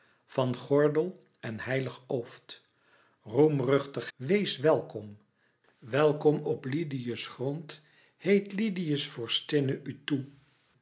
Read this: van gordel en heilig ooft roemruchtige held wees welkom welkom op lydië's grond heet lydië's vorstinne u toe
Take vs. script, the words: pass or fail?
fail